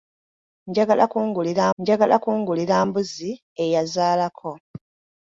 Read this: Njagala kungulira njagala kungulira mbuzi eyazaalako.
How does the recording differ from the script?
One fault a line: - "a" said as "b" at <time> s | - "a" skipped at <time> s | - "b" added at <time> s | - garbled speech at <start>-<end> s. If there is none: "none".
none